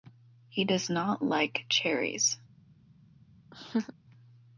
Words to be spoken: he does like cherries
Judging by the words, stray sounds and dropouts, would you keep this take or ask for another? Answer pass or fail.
fail